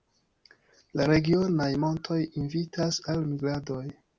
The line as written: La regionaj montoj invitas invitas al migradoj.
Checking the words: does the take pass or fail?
fail